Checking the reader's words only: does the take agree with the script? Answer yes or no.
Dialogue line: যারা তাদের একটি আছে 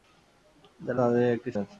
yes